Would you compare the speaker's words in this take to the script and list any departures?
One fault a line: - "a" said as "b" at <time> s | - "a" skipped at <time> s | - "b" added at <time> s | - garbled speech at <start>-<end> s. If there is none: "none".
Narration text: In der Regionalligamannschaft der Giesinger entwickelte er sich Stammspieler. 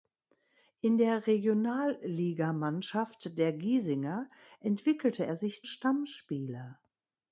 none